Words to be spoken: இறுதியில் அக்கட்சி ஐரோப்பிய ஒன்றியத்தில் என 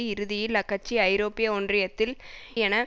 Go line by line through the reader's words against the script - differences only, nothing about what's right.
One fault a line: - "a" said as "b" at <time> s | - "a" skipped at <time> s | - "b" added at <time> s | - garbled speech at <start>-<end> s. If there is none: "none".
none